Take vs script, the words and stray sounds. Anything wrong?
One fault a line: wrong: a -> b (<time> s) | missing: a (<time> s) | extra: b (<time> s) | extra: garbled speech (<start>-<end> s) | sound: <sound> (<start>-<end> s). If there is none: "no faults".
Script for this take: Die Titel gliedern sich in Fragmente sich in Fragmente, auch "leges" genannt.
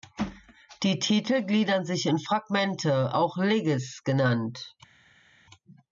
missing: sich in Fragmente (3.1 s)